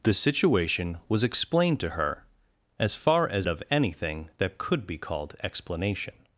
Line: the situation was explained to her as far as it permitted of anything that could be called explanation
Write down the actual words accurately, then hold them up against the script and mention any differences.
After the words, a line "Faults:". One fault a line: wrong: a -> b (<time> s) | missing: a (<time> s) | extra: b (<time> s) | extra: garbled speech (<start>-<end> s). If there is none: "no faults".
the situation was explained to her as far as of anything that could be called explanation
Faults:
missing: it permitted (3.5 s)